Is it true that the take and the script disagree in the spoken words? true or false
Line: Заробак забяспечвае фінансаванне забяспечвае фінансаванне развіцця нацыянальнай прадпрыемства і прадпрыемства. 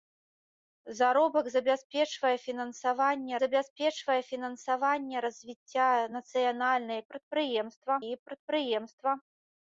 false